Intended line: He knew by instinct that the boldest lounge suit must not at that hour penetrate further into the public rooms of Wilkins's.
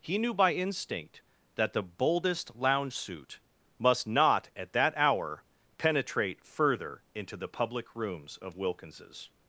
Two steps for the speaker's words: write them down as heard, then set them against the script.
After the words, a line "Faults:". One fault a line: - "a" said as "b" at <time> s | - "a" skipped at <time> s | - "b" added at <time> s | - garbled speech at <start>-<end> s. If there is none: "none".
He knew by instinct that the boldest lounge suit must not at that hour penetrate further into the public rooms of Wilkins's.
Faults:
none